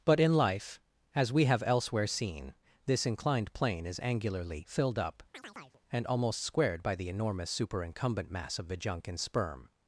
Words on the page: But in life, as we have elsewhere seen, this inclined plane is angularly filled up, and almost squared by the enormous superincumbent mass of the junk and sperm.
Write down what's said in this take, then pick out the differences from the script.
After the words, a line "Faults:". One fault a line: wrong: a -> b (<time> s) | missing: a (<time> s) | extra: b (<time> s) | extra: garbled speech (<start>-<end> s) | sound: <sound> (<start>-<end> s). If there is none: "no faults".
But in life, as we have elsewhere seen, this inclined plane is angularly filled up, and almost squared by the enormous superincumbent mass of the junk and sperm.
Faults:
sound: chirp (5.3-5.8 s)